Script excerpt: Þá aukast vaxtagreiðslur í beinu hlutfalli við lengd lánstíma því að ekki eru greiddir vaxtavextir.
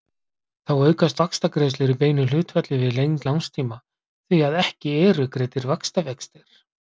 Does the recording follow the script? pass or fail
pass